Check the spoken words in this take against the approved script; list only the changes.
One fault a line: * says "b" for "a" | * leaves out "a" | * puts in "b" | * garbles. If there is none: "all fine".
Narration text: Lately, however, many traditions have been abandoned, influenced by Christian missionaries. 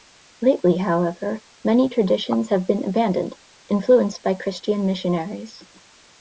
all fine